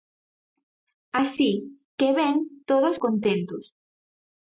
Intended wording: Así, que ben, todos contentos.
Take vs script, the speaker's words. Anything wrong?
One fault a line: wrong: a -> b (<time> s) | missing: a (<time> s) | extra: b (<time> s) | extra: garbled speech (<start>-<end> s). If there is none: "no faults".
no faults